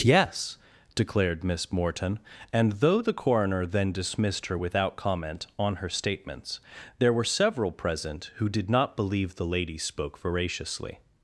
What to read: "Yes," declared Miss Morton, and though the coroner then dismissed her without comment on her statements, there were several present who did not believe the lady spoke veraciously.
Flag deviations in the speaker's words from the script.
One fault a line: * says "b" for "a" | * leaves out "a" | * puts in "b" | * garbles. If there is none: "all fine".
all fine